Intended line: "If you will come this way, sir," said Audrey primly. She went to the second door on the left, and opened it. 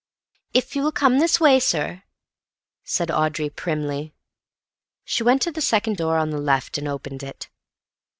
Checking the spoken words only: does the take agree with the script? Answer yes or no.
yes